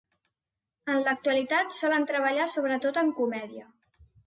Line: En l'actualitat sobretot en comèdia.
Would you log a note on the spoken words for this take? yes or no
yes